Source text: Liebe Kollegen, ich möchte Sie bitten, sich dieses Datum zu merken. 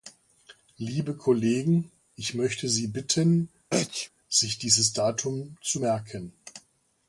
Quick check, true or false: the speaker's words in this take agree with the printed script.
true